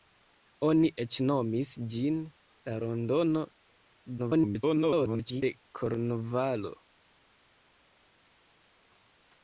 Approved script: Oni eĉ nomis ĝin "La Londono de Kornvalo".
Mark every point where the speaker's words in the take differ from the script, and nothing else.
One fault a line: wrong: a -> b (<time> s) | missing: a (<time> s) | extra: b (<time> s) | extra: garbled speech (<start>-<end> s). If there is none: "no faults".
extra: garbled speech (4.2-5.4 s)